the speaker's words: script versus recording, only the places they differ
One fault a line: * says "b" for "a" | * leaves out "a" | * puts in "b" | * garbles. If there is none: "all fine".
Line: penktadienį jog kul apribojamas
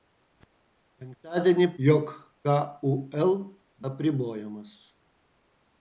all fine